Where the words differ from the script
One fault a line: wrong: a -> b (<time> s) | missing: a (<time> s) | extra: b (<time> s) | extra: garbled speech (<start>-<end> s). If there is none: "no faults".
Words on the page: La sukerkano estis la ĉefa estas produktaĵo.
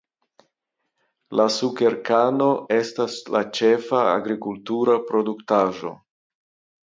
wrong: estis -> estas (2.8 s)
wrong: estas -> agrikultura (4.2 s)